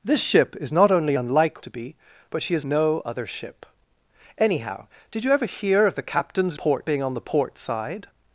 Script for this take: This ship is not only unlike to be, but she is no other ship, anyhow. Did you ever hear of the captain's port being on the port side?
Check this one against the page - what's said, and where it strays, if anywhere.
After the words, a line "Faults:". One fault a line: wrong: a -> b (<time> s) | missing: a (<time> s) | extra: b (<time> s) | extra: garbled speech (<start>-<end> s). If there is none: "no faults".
This ship is not only unlike to be, but she is no other ship, anyhow. Did you ever hear of the captain's port being on the port side?
Faults:
no faults